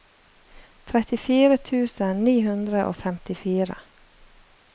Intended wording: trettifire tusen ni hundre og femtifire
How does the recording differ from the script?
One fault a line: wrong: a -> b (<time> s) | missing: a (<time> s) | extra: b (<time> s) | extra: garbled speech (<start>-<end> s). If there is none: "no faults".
no faults